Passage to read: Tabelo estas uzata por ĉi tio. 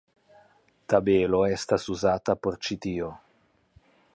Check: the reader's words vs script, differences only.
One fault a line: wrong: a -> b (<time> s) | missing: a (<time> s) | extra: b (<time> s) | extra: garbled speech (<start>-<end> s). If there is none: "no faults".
no faults